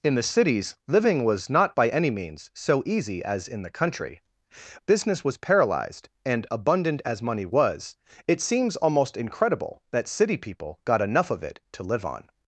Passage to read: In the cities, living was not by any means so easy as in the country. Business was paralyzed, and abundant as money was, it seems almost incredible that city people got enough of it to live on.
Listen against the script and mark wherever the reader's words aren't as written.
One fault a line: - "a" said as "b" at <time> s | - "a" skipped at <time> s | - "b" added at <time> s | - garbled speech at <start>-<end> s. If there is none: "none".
none